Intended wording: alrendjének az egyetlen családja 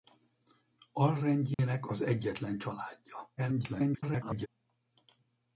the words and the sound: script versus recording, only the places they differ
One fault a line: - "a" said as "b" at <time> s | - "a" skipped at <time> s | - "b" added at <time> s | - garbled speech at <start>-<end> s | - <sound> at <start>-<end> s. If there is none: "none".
- dropout at 1.5-1.6 s
- garbled speech at 3.4-4.5 s